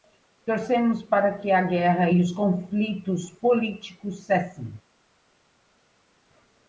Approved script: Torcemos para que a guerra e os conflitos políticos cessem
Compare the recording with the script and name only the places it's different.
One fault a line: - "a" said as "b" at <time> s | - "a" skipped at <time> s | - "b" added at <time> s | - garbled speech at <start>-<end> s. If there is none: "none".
none